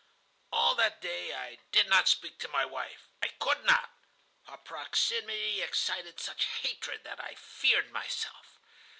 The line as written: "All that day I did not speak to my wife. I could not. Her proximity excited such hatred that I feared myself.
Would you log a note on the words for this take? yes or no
no